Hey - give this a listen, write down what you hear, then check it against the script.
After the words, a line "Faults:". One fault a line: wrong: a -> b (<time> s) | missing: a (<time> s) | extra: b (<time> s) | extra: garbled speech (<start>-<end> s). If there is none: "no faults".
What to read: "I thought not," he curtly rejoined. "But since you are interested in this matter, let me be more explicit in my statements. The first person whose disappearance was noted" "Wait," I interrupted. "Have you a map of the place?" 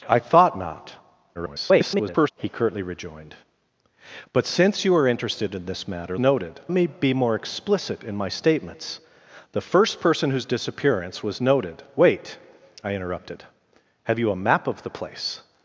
"I thought not," [garbled] he curtly rejoined. "But since you are interested in this matter, noted me be more explicit in my statements. The first person whose disappearance was noted" "Wait," I interrupted. "Have you a map of the place?"
Faults:
extra: garbled speech (1.3-2.3 s)
wrong: let -> noted (6.2 s)